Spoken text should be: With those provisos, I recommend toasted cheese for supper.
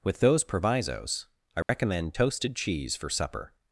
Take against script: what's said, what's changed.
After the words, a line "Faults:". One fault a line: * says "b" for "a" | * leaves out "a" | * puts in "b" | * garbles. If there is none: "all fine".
With those provisos, I recommend toasted cheese for supper.
Faults:
all fine